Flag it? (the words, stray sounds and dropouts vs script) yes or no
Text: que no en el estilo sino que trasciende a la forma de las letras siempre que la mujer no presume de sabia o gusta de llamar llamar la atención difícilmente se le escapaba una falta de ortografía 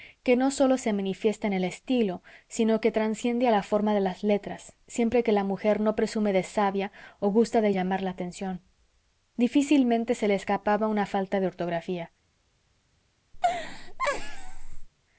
yes